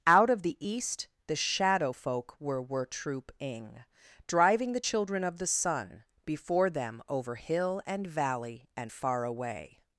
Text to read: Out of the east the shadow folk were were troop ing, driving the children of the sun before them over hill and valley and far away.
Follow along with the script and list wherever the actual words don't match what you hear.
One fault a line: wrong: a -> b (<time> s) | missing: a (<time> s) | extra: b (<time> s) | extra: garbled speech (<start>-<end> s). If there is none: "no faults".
no faults